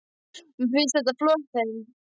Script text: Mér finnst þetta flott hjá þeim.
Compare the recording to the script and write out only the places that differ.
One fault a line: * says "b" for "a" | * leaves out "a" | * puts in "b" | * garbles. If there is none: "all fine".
* leaves out "hjá"